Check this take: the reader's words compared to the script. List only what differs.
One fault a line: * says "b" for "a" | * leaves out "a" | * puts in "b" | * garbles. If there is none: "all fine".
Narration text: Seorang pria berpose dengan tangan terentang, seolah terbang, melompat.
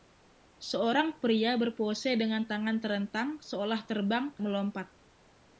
all fine